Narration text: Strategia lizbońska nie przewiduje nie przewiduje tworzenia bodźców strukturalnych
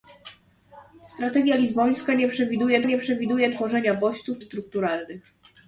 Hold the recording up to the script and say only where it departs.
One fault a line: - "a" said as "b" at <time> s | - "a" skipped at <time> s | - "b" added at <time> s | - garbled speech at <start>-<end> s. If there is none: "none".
none